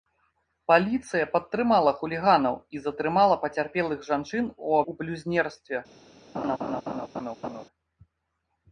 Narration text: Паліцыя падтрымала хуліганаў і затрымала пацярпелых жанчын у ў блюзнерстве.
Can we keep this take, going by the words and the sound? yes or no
no